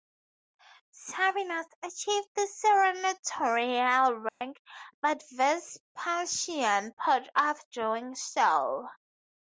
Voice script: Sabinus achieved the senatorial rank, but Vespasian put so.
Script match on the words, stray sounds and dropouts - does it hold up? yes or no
no